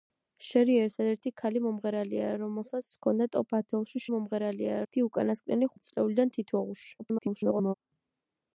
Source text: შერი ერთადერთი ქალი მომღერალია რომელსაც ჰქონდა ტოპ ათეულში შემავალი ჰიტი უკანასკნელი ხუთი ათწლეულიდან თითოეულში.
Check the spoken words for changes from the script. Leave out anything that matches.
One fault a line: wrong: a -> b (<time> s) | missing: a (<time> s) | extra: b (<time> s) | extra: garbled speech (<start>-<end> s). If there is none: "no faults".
wrong: შემავალი -> მომღერალია (4.1 s)
missing: ხუთი (5.7 s)
extra: garbled speech (7.0-7.7 s)